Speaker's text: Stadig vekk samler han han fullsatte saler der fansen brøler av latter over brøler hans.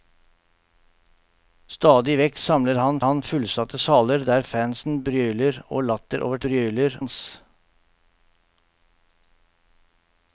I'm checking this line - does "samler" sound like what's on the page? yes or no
yes